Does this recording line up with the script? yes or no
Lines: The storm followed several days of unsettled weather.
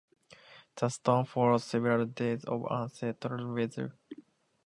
yes